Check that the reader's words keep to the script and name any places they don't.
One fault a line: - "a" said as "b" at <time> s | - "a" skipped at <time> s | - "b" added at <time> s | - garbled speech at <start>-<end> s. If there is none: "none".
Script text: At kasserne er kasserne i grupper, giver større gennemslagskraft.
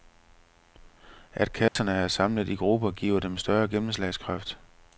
- "kasserne" said as "samlet" at 2.1 s
- "dem" added at 3.2 s